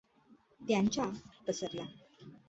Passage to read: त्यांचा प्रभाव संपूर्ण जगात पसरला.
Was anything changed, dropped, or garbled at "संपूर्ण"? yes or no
yes